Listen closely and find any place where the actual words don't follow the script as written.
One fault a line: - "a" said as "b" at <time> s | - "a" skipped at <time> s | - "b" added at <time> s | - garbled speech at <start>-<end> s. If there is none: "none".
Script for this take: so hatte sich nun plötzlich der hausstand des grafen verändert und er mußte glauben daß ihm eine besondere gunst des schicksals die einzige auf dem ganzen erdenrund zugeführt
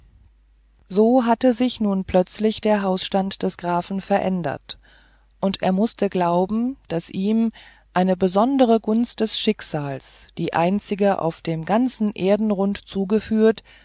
none